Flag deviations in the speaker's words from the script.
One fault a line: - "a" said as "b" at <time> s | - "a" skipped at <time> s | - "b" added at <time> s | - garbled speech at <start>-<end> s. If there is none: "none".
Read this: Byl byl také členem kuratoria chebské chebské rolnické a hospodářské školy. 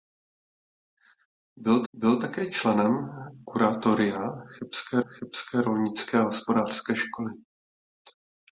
none